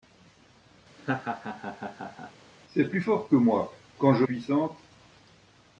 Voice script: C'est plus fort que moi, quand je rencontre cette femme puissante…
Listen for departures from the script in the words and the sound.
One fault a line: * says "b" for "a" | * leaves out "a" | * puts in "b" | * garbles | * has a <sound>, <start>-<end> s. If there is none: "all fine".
* has a laugh, 1.0-2.3 s
* leaves out "rencontre cette femme"